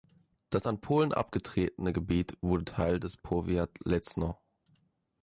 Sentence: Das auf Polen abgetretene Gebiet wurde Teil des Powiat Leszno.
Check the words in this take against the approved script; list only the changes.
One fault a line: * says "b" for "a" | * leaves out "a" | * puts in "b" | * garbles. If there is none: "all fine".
* says "an" for "auf"